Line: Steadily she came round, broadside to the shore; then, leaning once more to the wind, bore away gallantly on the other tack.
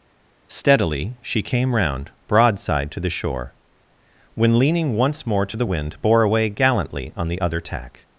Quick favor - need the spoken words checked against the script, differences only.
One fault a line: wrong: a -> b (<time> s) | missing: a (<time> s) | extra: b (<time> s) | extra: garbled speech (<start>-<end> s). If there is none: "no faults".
wrong: then -> when (4.3 s)